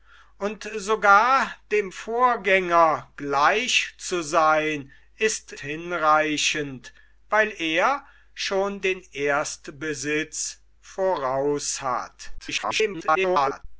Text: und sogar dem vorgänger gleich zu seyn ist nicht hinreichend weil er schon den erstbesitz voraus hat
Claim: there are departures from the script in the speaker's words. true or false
true